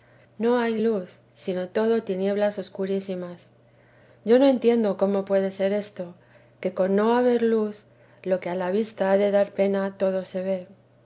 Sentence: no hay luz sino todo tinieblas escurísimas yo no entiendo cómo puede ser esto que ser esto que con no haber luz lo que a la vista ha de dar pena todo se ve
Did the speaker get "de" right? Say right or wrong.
right